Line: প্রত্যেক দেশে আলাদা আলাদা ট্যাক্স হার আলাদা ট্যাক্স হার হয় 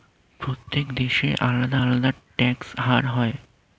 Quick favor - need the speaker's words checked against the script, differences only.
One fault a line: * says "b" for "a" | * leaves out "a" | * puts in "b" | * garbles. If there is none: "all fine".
* leaves out "আলাদা ট্যাক্স হার"